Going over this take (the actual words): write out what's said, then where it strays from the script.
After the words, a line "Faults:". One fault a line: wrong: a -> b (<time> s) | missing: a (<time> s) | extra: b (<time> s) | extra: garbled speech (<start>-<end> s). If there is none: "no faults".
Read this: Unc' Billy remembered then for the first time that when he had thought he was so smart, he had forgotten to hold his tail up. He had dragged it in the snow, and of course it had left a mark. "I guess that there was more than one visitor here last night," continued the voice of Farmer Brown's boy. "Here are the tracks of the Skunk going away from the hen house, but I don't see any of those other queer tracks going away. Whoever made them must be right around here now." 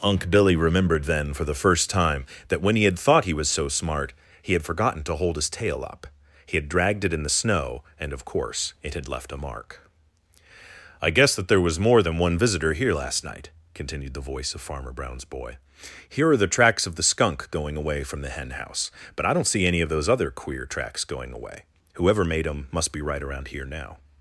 Unc' Billy remembered then for the first time that when he had thought he was so smart, he had forgotten to hold his tail up. He had dragged it in the snow, and of course it had left a mark. "I guess that there was more than one visitor here last night," continued the voice of Farmer Brown's boy. "Here are the tracks of the Skunk going away from the hen house, but I don't see any of those other queer tracks going away. Whoever made them must be right around here now."
Faults:
no faults